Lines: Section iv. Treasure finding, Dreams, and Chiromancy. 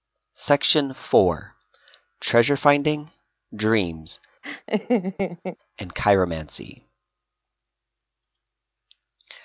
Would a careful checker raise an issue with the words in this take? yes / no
no